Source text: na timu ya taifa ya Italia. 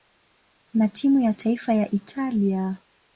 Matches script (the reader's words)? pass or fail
pass